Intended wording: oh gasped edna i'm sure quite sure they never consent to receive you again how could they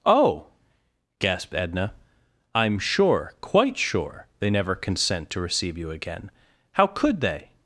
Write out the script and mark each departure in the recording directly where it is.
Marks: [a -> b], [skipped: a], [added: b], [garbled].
oh gasped edna i'm sure quite sure they never consent to receive you again how could they